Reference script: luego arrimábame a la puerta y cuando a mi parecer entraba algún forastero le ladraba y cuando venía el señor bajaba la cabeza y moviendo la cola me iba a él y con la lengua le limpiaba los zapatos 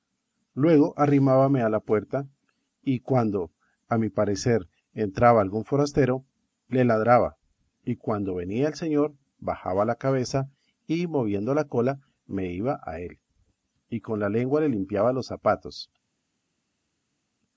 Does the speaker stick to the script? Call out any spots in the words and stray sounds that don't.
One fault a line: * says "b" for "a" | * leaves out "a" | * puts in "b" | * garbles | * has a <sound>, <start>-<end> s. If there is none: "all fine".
all fine